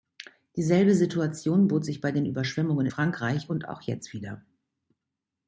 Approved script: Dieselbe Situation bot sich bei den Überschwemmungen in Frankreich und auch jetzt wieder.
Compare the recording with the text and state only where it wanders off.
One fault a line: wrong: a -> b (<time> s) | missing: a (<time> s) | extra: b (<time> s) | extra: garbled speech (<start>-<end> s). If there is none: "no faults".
missing: in (2.9 s)